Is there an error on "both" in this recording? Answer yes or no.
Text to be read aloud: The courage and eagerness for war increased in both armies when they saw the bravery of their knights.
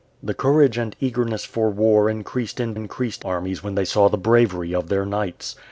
yes